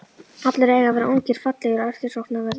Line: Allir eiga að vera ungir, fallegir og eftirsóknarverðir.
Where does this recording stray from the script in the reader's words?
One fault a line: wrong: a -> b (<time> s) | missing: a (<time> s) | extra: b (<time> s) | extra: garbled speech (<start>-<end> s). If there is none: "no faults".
no faults